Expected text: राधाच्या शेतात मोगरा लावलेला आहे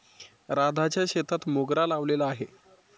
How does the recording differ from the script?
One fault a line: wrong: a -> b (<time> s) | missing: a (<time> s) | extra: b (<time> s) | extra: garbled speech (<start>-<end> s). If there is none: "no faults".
no faults